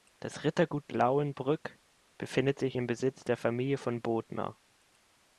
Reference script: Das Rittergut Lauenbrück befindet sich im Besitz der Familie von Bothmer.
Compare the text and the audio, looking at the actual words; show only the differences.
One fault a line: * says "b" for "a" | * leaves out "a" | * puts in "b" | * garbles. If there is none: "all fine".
all fine